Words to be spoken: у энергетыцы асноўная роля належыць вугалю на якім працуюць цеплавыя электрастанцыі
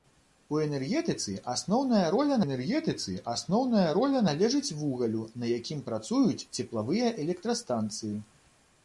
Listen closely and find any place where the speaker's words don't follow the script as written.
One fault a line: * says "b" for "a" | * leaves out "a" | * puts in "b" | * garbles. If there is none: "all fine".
* puts in "энергетыцы асноўная роля"